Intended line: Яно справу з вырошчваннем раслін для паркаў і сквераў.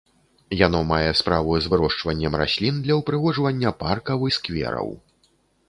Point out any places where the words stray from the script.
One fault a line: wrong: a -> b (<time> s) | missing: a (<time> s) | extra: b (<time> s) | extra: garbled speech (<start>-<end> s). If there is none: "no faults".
extra: мае (0.9 s)
extra: ўпрыгожвання (3.0 s)